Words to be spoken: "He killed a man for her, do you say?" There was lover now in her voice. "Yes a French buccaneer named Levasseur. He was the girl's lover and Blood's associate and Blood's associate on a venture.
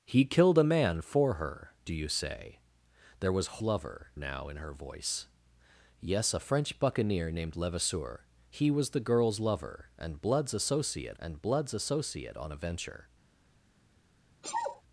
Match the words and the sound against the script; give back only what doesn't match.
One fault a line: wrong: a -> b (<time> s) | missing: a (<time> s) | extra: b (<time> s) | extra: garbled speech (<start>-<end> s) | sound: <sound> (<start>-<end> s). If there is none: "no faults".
sound: sneeze (14.4-14.8 s)